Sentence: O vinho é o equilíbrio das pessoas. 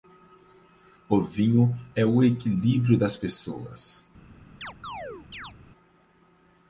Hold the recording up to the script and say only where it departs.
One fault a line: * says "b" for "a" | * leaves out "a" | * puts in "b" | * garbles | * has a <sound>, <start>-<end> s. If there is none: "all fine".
* has a chirp, 4.6-5.5 s